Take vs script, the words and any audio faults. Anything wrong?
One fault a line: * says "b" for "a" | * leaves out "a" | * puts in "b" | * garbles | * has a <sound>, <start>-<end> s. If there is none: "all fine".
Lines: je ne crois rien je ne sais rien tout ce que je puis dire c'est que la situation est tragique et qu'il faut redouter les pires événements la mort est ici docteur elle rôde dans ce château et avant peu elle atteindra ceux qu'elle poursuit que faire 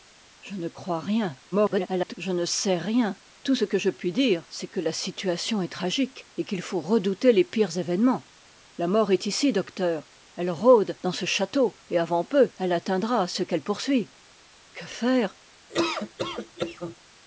* garbles
* has a laugh, 15.7-17.0 s